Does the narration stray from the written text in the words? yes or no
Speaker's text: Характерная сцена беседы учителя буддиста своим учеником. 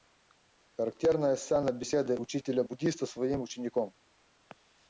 no